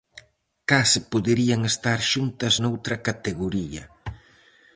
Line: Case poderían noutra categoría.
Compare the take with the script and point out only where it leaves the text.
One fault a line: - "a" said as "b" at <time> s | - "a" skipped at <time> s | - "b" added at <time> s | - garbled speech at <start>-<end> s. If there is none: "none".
- "estar xuntas" added at 1.7 s